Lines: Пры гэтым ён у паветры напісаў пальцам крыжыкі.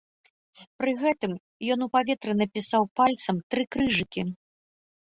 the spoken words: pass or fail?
fail